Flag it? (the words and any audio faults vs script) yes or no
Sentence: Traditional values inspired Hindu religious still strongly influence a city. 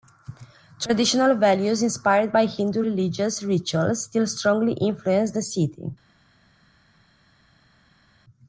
yes